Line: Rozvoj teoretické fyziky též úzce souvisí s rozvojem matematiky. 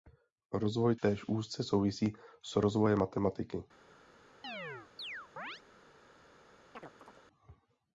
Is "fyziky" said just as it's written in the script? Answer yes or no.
no